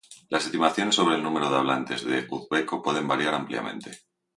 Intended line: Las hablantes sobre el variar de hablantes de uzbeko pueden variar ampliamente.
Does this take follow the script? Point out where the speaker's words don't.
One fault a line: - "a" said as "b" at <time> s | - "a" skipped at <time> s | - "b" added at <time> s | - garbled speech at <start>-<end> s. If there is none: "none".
- "hablantes" said as "estimaciones" at 0.5 s
- "variar" said as "número" at 1.2 s